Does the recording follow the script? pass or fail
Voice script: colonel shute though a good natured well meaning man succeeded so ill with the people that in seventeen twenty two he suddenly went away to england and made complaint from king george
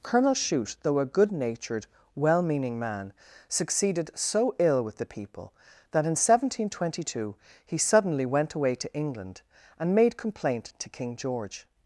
fail